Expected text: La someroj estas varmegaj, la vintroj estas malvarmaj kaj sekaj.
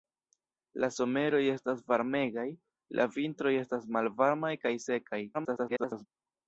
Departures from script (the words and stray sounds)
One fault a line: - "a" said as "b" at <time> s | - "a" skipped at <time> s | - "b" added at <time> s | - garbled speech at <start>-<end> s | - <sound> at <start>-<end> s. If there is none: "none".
- garbled speech at 5.3-6.1 s